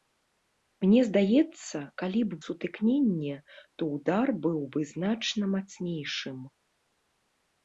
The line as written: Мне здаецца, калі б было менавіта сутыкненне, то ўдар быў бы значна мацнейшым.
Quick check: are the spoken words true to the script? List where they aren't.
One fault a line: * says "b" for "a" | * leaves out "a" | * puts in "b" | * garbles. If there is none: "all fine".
* leaves out "было менавіта"